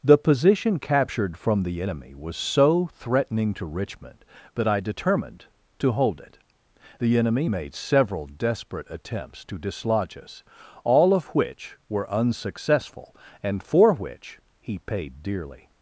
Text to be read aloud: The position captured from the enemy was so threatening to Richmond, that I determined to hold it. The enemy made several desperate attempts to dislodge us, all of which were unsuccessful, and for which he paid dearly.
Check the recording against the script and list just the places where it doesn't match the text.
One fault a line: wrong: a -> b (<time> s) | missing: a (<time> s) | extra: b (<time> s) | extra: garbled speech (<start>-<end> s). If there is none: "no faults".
no faults